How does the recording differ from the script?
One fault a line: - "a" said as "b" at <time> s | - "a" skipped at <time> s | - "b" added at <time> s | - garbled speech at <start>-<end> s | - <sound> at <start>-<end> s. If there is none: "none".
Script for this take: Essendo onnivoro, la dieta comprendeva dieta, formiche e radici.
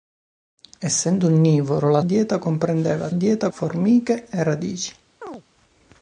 - chirp at 5.2-5.4 s